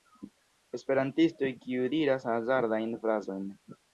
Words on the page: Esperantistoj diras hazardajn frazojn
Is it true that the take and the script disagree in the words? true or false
true